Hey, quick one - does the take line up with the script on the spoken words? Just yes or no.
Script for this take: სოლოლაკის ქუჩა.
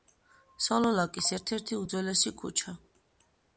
no